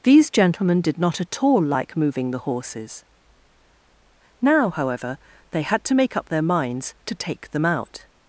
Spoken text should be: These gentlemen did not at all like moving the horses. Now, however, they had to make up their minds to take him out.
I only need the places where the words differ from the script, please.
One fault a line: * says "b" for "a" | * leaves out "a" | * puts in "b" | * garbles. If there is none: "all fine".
* says "them" for "him"